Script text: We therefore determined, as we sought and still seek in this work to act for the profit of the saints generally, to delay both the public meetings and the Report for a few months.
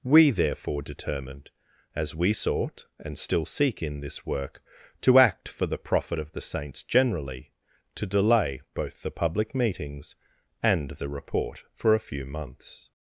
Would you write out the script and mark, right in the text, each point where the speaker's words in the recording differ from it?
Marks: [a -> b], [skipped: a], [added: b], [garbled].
We therefore determined, as we sought and still seek in this work to act for the profit of the saints generally, to delay both the public meetings and the Report for a few months.